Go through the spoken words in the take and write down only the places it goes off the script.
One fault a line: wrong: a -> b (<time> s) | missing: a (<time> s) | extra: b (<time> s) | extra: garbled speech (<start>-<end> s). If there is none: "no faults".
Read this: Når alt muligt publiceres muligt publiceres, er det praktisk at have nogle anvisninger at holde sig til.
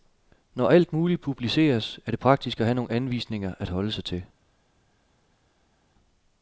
missing: muligt publiceres (2.0 s)